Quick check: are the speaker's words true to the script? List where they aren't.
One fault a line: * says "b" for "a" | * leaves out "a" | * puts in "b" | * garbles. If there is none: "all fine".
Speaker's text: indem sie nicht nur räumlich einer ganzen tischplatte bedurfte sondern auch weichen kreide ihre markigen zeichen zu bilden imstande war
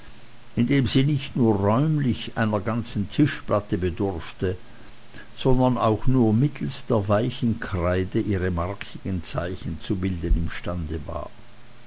* puts in "nur mittelst der"